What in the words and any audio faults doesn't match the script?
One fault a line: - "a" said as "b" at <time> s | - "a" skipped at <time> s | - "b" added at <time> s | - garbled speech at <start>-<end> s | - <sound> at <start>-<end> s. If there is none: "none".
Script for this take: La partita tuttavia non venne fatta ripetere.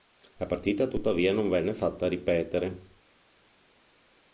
none